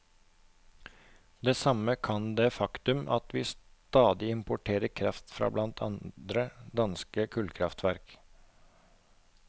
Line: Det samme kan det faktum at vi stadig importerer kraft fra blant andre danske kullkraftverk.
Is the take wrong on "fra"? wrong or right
right